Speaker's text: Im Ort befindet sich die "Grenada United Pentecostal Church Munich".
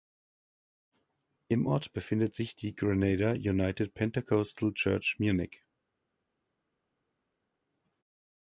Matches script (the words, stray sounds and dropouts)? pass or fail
pass